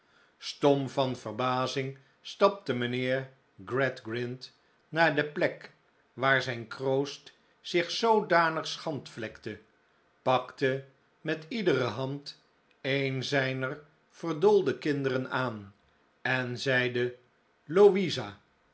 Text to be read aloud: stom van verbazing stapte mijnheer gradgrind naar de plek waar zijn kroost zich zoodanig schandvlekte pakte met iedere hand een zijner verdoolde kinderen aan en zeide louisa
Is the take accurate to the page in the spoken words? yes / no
yes